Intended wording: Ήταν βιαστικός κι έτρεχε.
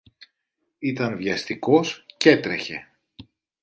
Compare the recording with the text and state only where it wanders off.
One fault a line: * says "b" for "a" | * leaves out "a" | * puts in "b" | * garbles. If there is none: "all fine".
all fine